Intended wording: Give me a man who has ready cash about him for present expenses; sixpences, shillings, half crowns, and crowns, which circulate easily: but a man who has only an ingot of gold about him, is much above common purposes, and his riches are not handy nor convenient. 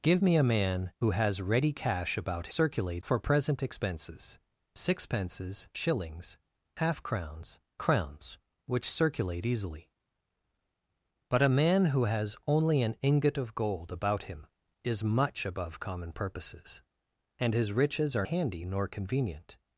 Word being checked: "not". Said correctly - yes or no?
no